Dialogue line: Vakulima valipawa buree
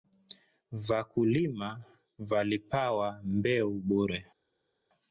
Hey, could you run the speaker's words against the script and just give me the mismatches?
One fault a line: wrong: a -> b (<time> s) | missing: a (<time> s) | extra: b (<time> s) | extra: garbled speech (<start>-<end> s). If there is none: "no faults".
extra: mbeu (3.2 s)